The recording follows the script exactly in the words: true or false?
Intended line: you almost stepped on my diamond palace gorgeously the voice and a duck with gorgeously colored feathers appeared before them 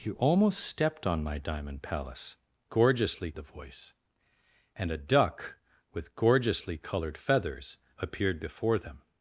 true